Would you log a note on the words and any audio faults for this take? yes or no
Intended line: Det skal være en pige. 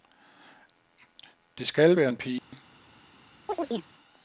yes